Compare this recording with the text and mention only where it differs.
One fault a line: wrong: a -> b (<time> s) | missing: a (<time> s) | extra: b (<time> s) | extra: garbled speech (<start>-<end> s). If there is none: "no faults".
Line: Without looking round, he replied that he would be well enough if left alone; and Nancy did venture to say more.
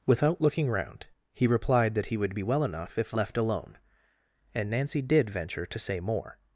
no faults